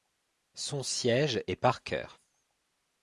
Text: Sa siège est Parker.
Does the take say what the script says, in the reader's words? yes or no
no